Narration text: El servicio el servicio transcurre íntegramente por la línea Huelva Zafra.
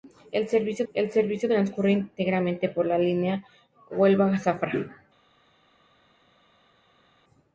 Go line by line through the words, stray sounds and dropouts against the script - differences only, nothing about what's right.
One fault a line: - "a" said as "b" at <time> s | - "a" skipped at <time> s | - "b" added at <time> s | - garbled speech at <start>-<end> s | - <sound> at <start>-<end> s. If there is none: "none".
none